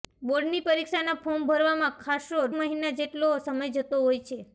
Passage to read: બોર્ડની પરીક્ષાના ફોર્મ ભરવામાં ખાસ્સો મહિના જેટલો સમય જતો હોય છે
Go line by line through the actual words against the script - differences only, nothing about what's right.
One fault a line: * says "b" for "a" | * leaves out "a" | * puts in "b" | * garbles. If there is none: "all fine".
all fine